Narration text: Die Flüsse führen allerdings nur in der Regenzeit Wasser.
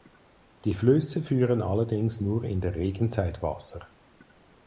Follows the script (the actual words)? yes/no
yes